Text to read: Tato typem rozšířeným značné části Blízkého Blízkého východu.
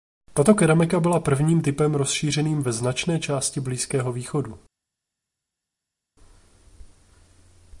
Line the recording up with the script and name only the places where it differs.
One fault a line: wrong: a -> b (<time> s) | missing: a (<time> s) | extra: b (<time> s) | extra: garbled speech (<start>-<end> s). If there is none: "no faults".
extra: keramika byla prvním (0.6 s)
extra: ve (2.6 s)
missing: Blízkého (4.1 s)